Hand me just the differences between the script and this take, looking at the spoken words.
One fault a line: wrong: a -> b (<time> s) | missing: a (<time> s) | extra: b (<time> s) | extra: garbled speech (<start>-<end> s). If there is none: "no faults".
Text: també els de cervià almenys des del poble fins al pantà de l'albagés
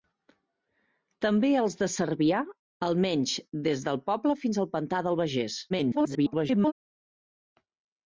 extra: garbled speech (5.7-6.7 s)